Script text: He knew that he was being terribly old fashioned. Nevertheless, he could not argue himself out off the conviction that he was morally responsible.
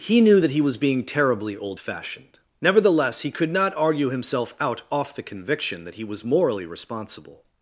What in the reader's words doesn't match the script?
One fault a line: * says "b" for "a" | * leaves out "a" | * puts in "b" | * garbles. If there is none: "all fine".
all fine